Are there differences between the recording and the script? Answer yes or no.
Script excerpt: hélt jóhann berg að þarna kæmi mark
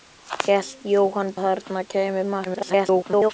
yes